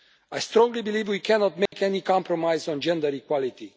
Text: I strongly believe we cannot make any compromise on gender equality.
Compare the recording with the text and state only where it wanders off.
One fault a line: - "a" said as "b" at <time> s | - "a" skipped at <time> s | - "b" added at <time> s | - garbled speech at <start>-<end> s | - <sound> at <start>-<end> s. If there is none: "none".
- dropout at 1.7-1.7 s